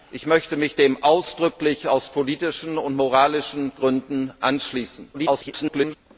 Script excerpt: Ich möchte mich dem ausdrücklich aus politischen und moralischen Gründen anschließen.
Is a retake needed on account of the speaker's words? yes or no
yes